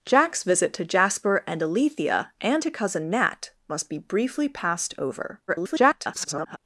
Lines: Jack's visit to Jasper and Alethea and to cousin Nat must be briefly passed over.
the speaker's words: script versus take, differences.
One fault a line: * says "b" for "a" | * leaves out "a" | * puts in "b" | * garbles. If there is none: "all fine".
* garbles